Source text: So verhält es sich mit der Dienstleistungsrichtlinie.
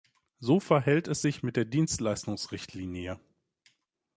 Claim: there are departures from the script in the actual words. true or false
false